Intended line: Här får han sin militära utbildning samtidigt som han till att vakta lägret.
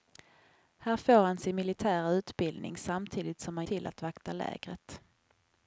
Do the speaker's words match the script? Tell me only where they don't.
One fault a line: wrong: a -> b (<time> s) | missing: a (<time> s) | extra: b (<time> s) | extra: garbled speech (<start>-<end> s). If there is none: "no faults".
no faults